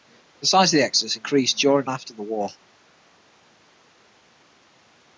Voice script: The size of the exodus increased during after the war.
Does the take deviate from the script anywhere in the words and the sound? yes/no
no